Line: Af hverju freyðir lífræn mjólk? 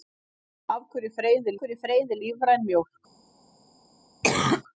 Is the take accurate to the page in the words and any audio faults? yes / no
no